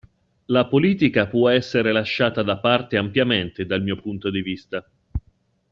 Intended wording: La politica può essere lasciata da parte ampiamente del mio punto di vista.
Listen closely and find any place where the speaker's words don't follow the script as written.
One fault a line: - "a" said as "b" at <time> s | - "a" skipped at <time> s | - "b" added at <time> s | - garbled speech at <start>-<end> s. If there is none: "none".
- "del" said as "dal" at 3.7 s